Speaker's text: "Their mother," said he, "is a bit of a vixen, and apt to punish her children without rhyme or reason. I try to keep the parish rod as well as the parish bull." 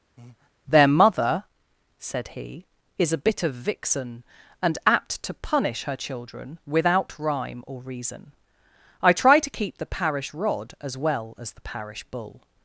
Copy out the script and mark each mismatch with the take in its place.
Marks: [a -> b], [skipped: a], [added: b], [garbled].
"Their mother," said he, "is a bit of [skipped: a] vixen, and apt to punish her children without rhyme or reason. I try to keep the parish rod as well as the parish bull."